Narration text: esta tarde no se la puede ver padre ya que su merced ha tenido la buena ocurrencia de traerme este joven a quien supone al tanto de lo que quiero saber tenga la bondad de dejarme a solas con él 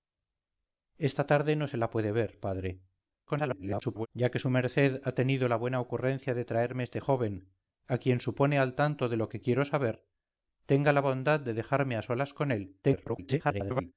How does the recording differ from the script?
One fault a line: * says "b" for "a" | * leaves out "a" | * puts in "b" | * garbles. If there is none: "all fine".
* garbles
* garbles